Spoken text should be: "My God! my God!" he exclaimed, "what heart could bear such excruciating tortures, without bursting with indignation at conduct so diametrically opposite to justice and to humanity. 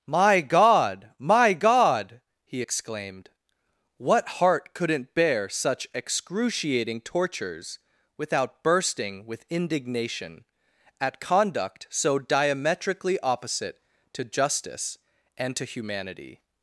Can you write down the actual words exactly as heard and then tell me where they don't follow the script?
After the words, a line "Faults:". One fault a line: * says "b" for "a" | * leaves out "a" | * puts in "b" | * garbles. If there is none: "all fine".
"My God! my God!" he exclaimed, "what heart couldn't bear such excruciating tortures, without bursting with indignation at conduct so diametrically opposite to justice and to humanity.
Faults:
* says "couldn't" for "could"